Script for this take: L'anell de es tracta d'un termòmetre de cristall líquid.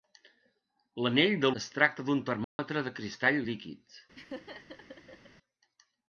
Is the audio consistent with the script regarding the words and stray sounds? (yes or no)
no